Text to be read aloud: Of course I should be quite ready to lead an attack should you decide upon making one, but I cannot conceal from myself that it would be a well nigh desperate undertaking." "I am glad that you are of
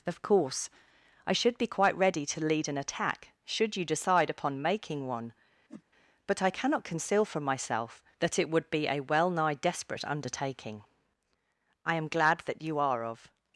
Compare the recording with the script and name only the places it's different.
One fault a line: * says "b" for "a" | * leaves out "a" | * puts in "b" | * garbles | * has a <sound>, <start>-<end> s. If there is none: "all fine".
* has a whoosh, 5.7-5.8 s